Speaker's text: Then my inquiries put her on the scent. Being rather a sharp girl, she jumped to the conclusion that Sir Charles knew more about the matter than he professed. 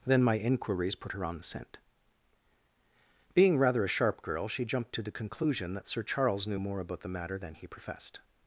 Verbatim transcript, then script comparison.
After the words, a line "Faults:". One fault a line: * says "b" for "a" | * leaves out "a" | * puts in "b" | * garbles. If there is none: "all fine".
Then my inquiries put her on the scent. Being rather a sharp girl, she jumped to the conclusion that Sir Charles knew more about the matter than he professed.
Faults:
all fine